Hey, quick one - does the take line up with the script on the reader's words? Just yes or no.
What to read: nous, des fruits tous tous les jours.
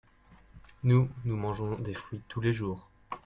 no